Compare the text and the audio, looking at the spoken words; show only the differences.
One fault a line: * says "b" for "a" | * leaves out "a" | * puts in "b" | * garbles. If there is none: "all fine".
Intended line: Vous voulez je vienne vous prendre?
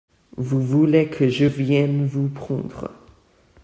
* puts in "que"